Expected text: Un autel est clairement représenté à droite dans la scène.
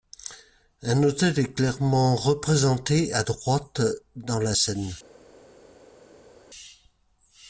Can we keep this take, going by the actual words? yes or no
yes